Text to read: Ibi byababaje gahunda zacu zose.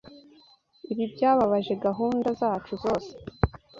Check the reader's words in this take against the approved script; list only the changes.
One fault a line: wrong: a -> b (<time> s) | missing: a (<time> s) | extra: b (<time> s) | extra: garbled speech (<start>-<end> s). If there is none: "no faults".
no faults